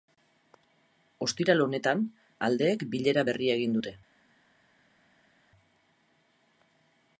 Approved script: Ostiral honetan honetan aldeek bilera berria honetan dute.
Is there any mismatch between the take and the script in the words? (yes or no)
yes